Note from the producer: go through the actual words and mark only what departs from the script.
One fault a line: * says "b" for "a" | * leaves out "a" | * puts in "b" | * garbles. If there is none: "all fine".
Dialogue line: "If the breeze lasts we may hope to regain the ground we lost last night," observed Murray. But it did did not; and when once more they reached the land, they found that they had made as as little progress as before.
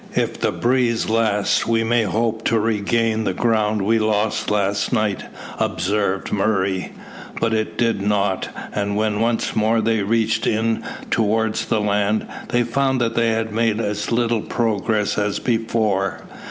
* leaves out "did"
* puts in "in towards"
* leaves out "as"